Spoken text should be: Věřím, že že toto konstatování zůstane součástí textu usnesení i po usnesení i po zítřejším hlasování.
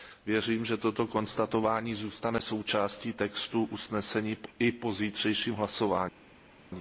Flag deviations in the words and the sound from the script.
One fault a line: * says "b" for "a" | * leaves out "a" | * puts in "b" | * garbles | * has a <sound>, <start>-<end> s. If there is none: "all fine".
* leaves out "že"
* leaves out "usnesení i po"